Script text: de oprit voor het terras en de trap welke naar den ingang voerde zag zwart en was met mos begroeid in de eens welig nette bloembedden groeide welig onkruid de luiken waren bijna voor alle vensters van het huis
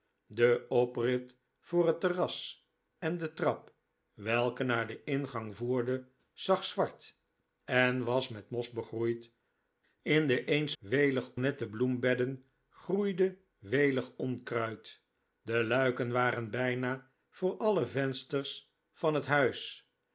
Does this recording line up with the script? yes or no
yes